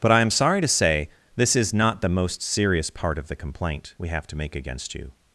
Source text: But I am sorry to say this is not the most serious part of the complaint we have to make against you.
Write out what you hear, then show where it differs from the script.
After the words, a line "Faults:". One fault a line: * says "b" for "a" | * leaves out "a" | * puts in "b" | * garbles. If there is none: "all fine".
But I am sorry to say this is not the most serious part of the complaint we have to make against you.
Faults:
all fine